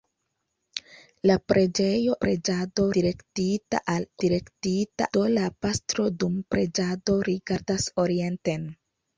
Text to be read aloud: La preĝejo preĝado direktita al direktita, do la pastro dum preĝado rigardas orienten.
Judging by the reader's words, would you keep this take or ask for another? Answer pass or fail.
pass